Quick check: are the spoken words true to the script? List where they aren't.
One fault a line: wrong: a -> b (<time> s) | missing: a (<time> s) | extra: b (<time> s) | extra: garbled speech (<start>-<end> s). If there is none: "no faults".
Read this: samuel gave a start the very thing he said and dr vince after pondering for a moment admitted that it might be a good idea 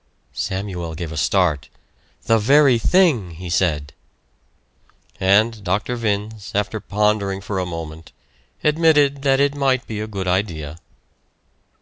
no faults